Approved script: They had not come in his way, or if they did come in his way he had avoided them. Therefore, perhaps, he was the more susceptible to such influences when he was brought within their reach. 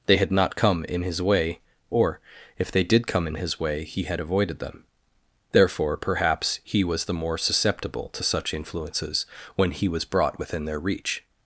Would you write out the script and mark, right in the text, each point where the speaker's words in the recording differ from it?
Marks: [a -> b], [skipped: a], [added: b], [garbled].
They had not come in his way, or if they did come in his way he had avoided them. Therefore, perhaps, he was the more susceptible to such influences when he was brought within their reach.